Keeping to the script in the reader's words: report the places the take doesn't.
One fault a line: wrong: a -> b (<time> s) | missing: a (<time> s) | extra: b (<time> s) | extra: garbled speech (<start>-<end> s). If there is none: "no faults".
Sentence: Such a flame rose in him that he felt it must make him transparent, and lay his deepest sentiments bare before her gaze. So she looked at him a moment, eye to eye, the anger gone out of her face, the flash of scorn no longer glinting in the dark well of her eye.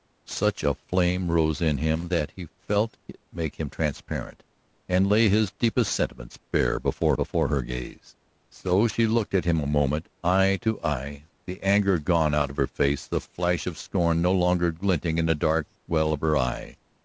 missing: must (3.2 s)
extra: before (7.1 s)